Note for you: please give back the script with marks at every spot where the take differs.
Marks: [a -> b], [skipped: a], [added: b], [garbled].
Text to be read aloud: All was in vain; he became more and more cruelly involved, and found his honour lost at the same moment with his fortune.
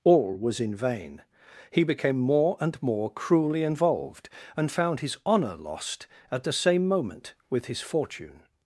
All was in vain; he became more and more cruelly involved, and found his honour lost at the same moment with his fortune.